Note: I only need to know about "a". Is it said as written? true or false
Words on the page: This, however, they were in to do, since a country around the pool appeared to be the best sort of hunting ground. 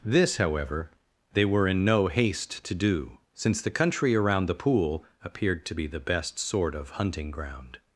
false